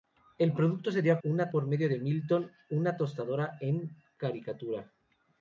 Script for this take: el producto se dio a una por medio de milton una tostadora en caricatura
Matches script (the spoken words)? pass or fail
pass